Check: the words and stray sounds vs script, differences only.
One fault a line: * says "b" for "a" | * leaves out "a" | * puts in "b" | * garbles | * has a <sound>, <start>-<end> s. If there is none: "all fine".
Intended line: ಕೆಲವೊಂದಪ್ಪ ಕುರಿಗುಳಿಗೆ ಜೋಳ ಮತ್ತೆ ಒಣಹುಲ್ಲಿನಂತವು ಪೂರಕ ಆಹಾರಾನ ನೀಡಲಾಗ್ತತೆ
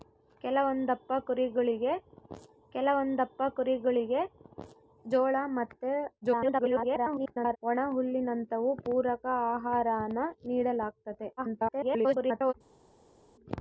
* puts in "ಕೆಲವೊಂದಪ್ಪ ಕುರಿಗುಳಿಗೆ"
* garbles
* garbles